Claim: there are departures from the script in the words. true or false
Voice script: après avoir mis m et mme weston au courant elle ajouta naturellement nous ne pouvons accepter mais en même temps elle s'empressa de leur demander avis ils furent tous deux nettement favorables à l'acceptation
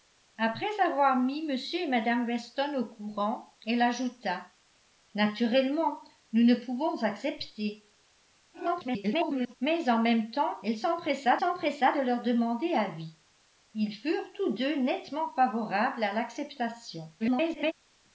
true